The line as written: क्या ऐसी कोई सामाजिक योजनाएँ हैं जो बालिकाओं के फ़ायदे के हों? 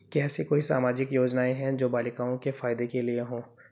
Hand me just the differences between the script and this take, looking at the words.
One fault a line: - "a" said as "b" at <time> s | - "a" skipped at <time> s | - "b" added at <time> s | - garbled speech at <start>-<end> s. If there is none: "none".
- "लिए" added at 3.0 s